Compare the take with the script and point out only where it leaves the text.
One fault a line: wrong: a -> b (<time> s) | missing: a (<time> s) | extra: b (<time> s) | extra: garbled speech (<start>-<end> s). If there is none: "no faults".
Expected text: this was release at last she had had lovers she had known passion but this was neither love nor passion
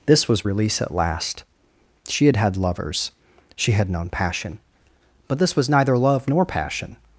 no faults